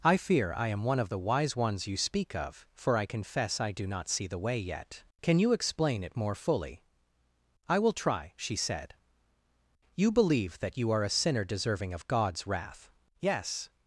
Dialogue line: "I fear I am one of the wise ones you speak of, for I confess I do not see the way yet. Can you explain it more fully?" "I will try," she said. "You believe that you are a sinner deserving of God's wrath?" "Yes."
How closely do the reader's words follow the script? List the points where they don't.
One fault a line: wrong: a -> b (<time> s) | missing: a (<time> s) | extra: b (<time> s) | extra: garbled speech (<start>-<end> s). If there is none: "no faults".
no faults